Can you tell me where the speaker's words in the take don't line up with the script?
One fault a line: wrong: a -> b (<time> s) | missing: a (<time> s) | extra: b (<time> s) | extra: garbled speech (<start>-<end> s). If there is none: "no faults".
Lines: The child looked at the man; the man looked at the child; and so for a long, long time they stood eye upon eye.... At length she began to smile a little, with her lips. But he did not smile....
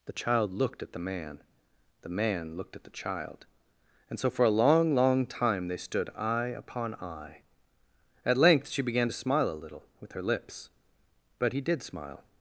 missing: not (11.8 s)